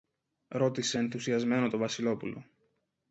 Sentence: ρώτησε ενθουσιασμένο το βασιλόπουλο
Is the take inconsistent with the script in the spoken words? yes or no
no